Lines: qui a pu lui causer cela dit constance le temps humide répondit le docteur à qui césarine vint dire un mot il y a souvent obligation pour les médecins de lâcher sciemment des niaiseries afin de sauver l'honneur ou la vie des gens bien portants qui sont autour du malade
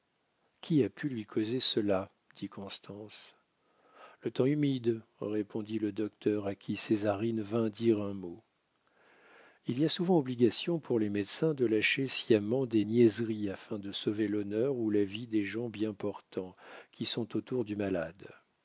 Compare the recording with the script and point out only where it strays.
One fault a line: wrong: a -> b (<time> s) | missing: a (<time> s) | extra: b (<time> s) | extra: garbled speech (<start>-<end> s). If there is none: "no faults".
no faults